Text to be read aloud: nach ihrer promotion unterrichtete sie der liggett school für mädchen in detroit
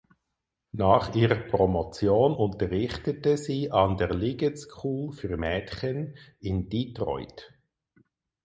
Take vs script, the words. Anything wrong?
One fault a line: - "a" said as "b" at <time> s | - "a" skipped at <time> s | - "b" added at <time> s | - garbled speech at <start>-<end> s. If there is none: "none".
- "an" added at 3.7 s